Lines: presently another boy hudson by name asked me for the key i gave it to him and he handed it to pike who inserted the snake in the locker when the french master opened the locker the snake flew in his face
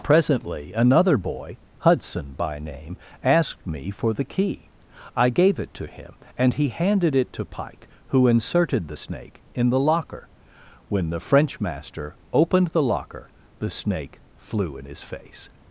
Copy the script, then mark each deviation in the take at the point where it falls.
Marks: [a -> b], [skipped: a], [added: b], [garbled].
presently another boy hudson by name asked me for the key i gave it to him and he handed it to pike who inserted the snake in the locker when the french master opened the locker the snake flew in his face